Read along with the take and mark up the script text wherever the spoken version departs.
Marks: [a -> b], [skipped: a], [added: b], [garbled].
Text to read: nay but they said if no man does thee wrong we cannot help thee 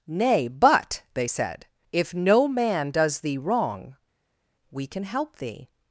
nay but they said if no man does thee wrong we [cannot -> can] help thee